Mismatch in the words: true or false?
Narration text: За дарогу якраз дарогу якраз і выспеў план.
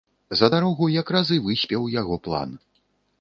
true